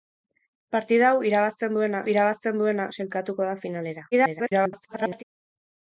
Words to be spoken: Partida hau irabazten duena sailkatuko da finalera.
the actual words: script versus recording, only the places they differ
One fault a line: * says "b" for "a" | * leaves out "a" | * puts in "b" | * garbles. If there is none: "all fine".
* puts in "irabazten duena"
* garbles